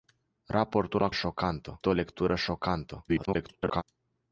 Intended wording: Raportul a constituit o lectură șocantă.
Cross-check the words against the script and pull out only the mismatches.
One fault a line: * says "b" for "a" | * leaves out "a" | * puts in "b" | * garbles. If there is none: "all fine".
* says "șocantă" for "constituit"
* garbles